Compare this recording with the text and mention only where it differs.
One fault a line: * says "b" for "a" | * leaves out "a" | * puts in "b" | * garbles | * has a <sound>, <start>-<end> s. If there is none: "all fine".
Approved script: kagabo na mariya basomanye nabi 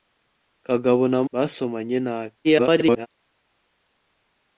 * leaves out "mariya"
* garbles